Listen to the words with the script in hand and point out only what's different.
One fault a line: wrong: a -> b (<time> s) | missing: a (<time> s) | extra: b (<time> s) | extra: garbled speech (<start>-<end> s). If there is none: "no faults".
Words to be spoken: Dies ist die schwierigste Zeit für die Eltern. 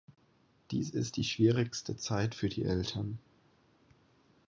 no faults